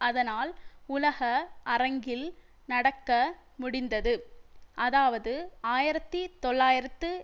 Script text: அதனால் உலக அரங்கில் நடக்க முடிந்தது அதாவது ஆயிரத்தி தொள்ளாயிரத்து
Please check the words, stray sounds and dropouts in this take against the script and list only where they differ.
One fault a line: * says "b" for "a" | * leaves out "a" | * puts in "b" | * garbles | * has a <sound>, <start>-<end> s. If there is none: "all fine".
all fine